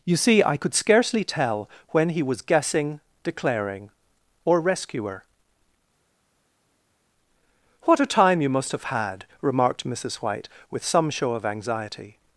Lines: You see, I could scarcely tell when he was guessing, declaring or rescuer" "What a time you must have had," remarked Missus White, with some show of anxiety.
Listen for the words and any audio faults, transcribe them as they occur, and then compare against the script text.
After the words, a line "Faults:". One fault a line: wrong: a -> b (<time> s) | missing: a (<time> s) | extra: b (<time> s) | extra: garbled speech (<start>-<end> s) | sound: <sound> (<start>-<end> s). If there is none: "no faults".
You see, I could scarcely tell when he was guessing, declaring or rescuer" "What a time you must have had," remarked Missus White, with some show of anxiety.
Faults:
no faults